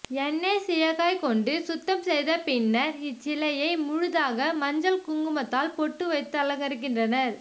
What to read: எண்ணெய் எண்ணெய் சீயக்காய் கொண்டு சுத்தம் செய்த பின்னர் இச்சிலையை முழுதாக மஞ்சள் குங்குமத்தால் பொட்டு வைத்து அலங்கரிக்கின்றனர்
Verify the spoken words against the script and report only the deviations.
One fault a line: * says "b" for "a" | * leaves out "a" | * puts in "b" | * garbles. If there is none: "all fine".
* leaves out "எண்ணெய்"